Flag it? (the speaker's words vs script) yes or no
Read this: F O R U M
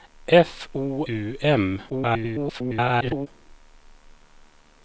yes